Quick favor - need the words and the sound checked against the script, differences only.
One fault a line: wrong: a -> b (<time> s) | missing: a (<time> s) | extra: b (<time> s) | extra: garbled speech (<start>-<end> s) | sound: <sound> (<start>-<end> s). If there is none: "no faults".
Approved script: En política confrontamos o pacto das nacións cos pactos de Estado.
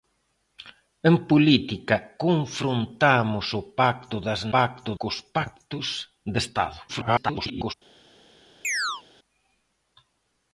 wrong: nacións -> pacto (4.5 s)
extra: garbled speech (6.9-7.7 s)
sound: chirp (8.6-9.0 s)